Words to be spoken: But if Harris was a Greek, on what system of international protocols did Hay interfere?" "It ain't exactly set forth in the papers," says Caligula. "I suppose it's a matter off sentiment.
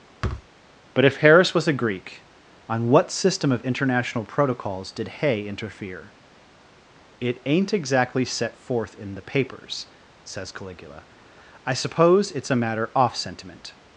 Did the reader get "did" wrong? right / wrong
right